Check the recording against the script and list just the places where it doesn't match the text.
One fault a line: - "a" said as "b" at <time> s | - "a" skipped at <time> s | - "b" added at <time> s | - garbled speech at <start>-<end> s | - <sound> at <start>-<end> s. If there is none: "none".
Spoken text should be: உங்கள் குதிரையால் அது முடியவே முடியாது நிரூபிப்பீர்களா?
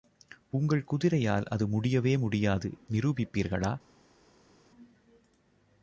none